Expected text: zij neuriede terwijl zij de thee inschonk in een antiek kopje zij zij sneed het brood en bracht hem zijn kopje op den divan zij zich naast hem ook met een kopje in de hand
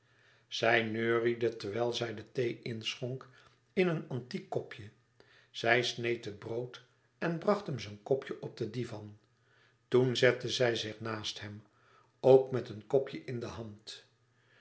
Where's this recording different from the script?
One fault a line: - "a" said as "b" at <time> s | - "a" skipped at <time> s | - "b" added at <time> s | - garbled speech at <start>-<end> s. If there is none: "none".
- "zij" skipped at 5.8 s
- "toen zette" added at 9.9 s